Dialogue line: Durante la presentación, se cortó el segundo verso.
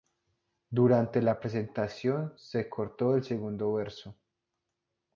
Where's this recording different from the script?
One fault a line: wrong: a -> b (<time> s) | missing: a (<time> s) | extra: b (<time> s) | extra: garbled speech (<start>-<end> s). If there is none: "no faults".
no faults